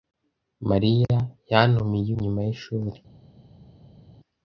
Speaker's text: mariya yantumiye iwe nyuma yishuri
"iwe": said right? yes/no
no